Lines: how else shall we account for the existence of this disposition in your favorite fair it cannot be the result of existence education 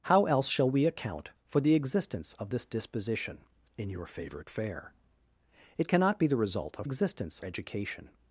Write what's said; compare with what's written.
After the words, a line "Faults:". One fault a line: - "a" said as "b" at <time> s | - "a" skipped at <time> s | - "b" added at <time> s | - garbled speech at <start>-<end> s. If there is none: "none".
how else shall we account for the existence of this disposition in your favorite fair it cannot be the result of existence education
Faults:
none